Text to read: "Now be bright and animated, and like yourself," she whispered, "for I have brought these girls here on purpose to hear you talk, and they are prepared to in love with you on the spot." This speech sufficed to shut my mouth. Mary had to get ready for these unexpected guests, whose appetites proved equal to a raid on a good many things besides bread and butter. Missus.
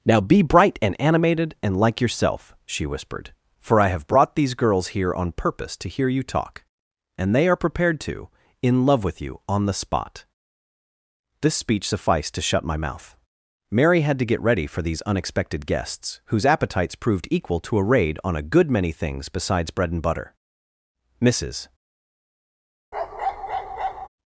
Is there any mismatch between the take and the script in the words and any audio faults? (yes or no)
yes